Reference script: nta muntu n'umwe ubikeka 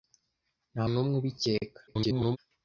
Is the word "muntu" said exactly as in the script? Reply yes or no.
no